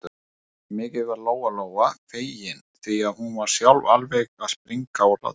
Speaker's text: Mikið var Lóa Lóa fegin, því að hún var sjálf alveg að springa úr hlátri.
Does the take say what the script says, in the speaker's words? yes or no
yes